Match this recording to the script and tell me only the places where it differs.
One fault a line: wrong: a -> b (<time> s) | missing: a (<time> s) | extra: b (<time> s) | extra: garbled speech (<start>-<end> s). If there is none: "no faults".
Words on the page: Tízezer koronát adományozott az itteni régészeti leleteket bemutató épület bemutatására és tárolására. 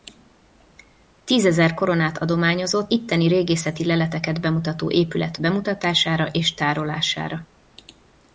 missing: az (2.9 s)